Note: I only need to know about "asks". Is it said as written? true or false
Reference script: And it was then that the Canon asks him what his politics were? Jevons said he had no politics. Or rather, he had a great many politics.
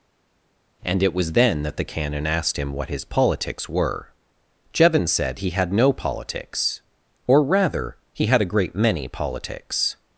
false